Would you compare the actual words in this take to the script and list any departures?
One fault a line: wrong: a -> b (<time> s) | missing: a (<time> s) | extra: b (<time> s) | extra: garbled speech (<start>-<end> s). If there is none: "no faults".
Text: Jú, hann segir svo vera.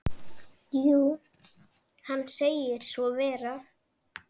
no faults